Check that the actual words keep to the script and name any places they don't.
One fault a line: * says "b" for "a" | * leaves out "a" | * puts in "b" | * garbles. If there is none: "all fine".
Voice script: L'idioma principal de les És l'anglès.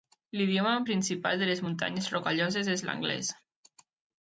* puts in "Muntanyes Rocalloses"